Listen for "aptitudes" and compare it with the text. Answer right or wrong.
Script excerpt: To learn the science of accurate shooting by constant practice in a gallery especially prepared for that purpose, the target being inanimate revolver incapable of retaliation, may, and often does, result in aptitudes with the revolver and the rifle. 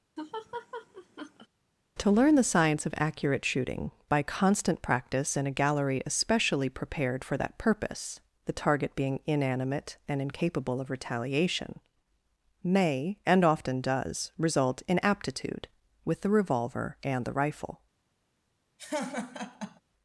wrong